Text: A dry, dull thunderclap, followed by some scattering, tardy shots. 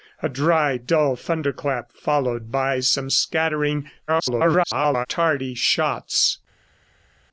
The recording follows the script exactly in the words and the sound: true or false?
false